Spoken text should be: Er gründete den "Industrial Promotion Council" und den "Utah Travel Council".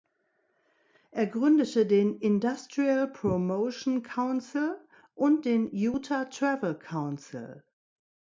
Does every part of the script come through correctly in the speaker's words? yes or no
yes